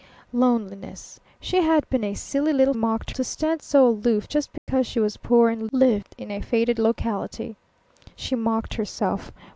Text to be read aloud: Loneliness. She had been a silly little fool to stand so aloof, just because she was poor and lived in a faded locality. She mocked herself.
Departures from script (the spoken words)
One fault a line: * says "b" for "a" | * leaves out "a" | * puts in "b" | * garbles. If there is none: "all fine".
* says "mocked" for "fool"